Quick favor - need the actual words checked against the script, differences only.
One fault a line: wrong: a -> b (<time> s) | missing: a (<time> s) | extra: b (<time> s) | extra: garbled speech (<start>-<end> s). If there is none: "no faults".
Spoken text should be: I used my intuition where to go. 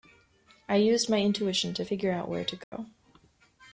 extra: to figure out (1.8 s)